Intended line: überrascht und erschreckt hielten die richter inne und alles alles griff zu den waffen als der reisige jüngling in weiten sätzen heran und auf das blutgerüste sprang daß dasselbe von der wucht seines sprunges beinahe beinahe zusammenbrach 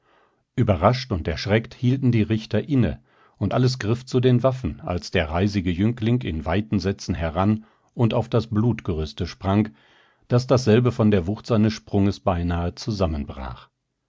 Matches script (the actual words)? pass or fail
fail